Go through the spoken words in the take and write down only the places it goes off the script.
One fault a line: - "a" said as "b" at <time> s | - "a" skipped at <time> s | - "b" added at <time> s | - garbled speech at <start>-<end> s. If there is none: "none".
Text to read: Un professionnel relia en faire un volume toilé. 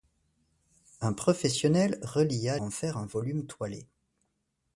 none